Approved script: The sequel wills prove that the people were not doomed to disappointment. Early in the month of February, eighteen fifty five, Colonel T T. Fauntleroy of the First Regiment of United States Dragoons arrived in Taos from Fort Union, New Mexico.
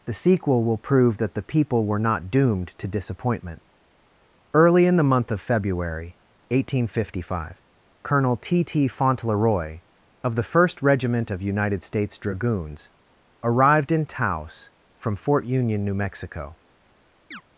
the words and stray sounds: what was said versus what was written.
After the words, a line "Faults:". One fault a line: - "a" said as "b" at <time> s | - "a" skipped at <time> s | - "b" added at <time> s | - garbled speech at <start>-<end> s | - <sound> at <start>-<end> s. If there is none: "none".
The sequel will prove that the people were not doomed to disappointment. Early in the month of February, eighteen fifty five, Colonel T T. Fauntleroy of the First Regiment of United States Dragoons arrived in Taos from Fort Union, New Mexico.
Faults:
- "wills" said as "will" at 0.6 s
- chirp at 17.3-17.4 s